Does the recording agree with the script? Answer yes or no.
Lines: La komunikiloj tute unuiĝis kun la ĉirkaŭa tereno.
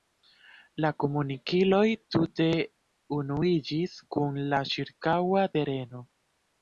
yes